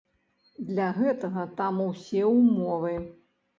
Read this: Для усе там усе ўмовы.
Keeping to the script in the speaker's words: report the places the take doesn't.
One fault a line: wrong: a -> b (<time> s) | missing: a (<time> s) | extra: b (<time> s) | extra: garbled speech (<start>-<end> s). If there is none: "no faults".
wrong: усе -> гэтага (0.9 s)